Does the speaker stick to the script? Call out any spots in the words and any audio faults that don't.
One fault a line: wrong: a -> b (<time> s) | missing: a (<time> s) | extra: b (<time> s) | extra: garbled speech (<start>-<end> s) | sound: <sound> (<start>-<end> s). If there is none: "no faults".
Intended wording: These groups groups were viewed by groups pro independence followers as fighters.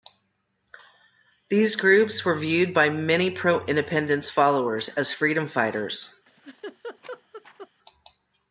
missing: groups (2.2 s)
wrong: groups -> many (2.9 s)
extra: freedom (5.1 s)
sound: laugh (6.3-7.7 s)